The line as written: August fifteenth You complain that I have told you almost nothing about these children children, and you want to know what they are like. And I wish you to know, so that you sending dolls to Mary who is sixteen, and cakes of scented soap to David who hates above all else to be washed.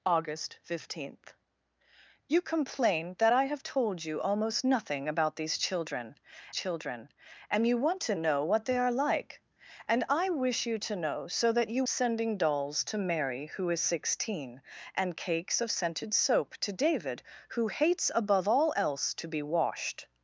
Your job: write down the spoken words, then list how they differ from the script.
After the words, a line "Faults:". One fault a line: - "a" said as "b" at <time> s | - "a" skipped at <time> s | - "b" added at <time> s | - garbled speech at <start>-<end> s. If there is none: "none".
August fifteenth You complain that I have told you almost nothing about these children children, and you want to know what they are like. And I wish you to know, so that you sending dolls to Mary who is sixteen, and cakes of scented soap to David who hates above all else to be washed.
Faults:
none